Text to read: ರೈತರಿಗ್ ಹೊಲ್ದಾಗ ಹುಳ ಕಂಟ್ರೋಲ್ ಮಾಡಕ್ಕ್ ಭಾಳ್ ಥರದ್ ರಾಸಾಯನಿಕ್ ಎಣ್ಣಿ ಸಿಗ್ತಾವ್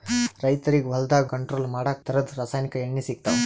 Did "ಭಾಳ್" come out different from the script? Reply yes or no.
yes